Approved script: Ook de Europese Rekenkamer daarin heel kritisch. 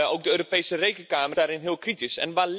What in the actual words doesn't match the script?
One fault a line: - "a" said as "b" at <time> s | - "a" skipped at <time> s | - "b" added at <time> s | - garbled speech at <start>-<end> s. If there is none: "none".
none